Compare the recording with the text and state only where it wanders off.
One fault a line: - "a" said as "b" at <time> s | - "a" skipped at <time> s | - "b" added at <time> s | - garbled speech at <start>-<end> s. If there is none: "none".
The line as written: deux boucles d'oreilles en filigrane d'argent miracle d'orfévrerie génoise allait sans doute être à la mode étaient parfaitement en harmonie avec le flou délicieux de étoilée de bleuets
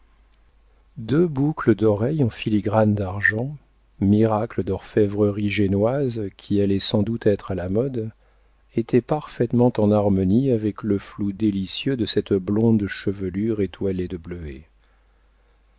- "qui" added at 6.4 s
- "cette blonde chevelure" added at 12.1 s